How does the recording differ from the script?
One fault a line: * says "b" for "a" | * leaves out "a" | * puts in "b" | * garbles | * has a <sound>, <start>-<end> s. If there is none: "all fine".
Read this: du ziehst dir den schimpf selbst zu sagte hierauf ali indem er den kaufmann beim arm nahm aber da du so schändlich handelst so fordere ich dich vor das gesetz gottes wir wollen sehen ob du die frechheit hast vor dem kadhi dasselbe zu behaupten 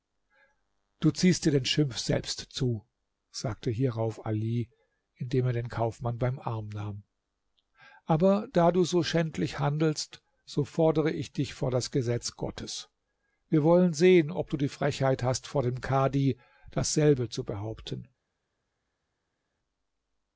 all fine